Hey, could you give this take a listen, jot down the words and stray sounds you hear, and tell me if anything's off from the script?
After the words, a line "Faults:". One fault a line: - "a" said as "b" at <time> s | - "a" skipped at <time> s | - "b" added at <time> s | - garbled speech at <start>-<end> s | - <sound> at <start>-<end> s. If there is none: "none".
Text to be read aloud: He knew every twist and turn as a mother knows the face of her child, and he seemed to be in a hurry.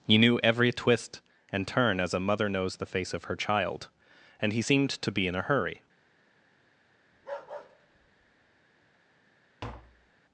He knew every twist and turn as a mother knows the face of her child, and he seemed to be in a hurry.
Faults:
- bark at 7.1-8.5 s
- tap at 9.6-10.2 s